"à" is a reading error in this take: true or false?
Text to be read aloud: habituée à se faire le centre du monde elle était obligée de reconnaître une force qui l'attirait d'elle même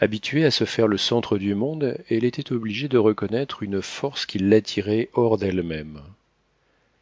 false